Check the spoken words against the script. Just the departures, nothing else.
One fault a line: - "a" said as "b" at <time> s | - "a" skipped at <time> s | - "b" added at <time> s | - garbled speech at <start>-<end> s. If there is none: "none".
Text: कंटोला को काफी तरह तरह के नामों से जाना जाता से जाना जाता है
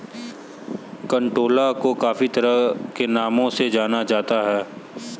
- "तरह" skipped at 2.9 s
- "से जाना जाता" skipped at 4.4 s